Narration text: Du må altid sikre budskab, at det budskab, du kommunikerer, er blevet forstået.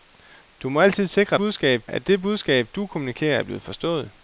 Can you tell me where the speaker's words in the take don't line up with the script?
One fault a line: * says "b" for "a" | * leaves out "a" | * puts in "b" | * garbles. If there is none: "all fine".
all fine